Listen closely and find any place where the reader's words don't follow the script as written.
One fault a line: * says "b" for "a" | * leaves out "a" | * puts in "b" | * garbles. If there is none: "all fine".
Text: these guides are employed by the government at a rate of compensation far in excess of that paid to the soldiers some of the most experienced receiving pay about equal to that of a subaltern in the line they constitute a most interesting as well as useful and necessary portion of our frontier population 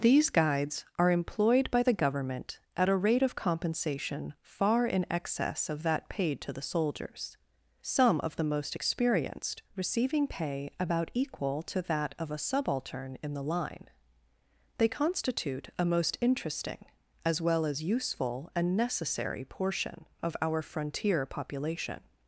all fine